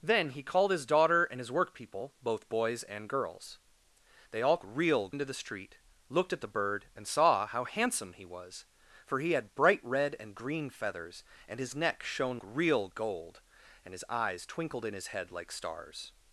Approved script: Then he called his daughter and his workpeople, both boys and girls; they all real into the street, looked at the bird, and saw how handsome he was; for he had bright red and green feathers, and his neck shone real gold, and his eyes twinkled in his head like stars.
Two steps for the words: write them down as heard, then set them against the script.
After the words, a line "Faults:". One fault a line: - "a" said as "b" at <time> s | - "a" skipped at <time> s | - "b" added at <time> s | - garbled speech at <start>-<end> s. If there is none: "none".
Then he called his daughter and his workpeople, both boys and girls; they all real into the street, looked at the bird, and saw how handsome he was; for he had bright red and green feathers, and his neck shone real gold, and his eyes twinkled in his head like stars.
Faults:
none